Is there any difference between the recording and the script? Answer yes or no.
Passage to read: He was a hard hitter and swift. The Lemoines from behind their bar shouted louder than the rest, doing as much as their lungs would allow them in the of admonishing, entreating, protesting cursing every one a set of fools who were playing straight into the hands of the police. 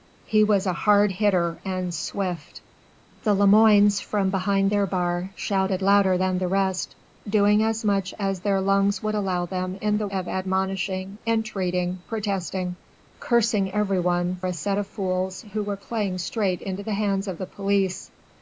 no